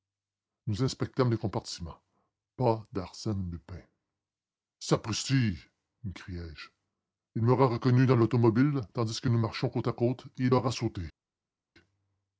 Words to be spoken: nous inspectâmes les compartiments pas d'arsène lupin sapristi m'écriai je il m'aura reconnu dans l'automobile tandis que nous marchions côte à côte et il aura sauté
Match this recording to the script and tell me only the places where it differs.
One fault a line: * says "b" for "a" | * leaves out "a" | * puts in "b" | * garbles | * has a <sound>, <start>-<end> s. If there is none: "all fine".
all fine